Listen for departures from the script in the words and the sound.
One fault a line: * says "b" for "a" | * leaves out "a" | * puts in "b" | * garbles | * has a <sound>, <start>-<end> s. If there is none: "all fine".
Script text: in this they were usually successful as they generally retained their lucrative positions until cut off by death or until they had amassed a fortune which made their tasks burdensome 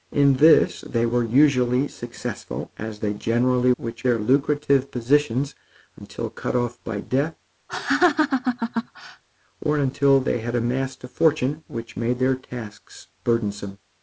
* says "which" for "retained"
* has a laugh, 7.7-9.2 s